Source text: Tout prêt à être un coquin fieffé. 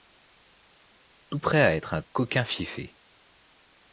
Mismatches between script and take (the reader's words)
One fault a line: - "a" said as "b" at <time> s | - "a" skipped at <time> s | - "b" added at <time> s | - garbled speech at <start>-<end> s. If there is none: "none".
none